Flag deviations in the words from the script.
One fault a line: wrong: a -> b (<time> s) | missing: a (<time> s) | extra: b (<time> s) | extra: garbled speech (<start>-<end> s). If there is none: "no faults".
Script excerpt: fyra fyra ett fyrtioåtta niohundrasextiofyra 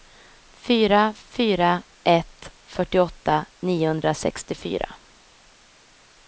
no faults